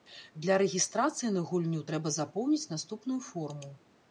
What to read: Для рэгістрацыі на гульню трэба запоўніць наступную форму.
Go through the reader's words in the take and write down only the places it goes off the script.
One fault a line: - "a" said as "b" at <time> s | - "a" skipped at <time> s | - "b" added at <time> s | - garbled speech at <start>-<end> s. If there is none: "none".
none